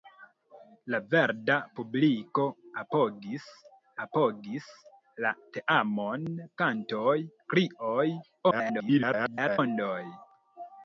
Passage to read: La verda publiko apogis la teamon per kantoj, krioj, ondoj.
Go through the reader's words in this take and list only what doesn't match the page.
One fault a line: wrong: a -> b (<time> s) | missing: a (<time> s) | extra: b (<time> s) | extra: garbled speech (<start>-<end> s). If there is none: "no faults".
extra: apogis (4.1 s)
missing: per (6.3 s)
extra: garbled speech (8.5-9.6 s)